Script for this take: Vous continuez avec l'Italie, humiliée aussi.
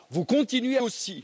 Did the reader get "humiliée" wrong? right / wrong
wrong